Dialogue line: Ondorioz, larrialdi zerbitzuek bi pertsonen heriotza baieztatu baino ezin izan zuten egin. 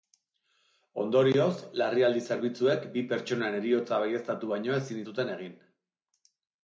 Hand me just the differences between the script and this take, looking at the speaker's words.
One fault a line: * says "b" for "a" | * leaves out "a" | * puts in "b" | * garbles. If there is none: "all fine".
* leaves out "izan"